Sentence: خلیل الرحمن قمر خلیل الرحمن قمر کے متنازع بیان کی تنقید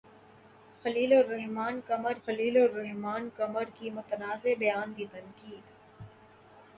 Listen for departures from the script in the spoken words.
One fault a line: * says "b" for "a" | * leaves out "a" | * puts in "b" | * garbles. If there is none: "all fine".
all fine